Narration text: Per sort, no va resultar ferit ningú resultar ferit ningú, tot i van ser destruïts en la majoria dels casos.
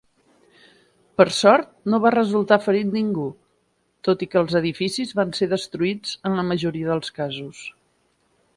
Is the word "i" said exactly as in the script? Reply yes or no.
no